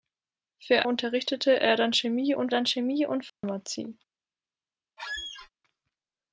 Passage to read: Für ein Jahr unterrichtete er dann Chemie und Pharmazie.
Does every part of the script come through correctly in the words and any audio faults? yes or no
no